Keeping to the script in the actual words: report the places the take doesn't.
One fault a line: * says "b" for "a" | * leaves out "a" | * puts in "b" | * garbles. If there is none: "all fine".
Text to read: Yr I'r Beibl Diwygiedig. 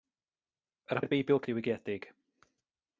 all fine